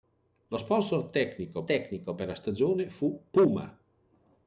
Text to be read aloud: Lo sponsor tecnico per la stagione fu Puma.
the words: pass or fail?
fail